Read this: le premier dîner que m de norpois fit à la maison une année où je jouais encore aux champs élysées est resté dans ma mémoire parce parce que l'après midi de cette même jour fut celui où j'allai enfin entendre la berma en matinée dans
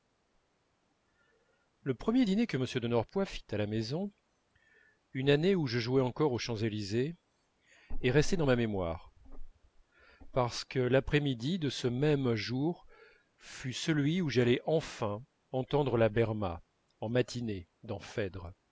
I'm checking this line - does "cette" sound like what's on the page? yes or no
no